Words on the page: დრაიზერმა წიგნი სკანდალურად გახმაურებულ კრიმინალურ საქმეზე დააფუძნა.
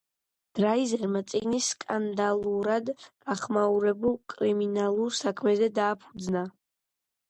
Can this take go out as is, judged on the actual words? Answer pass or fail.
pass